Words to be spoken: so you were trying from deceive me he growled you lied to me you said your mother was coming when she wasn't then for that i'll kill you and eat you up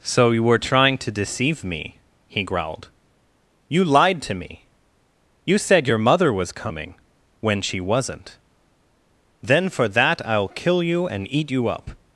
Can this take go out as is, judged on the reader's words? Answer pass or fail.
fail